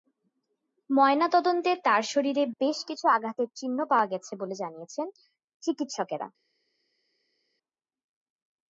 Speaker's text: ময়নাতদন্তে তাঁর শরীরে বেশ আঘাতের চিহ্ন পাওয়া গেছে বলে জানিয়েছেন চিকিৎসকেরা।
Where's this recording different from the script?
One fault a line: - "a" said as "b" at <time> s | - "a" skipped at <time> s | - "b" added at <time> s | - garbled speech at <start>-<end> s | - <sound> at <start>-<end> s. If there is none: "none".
- "কিছু" added at 2.9 s